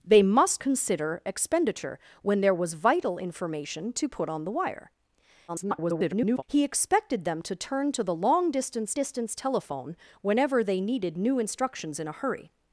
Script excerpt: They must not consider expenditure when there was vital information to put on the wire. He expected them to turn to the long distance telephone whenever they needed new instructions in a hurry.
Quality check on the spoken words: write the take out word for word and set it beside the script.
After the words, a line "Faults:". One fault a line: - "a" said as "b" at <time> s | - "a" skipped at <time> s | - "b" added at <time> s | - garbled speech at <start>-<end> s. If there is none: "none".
They must consider expenditure when there was vital information to put on the wire. [garbled] He expected them to turn to the long distance distance telephone whenever they needed new instructions in a hurry.
Faults:
- "not" skipped at 0.6 s
- garbled speech at 5.5-6.4 s
- "distance" added at 8.9 s